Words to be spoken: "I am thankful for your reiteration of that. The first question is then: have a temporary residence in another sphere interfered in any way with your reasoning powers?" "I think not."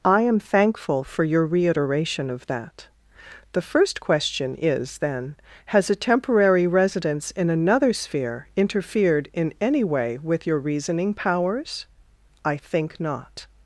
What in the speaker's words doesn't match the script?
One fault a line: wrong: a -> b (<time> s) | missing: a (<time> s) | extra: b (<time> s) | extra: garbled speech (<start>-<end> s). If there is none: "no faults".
wrong: have -> has (5.7 s)